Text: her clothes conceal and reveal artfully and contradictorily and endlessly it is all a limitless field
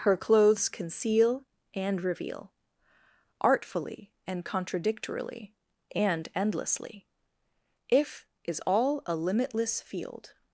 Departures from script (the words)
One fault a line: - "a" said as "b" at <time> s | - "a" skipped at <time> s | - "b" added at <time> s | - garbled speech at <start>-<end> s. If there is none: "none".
- "it" said as "if" at 7.9 s